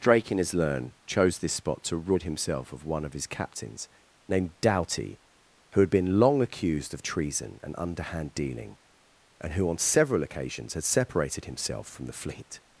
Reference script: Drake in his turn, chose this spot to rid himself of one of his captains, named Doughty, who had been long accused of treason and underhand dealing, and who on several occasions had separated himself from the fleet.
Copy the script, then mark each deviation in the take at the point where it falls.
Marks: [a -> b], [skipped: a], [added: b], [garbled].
Drake in his [turn, -> learn] chose this spot to rid himself of one of his captains, named Doughty, who had been long accused of treason and underhand dealing, and who on several occasions had separated himself from the fleet.